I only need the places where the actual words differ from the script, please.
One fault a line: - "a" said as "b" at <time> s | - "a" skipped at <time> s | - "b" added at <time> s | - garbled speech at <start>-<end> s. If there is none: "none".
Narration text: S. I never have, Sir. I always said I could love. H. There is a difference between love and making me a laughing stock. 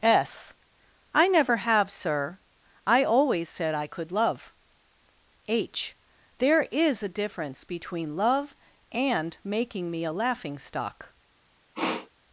none